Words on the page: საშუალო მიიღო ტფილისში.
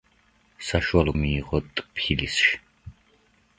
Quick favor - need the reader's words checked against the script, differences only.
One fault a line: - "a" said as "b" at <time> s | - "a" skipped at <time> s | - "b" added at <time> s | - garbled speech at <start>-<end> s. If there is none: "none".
none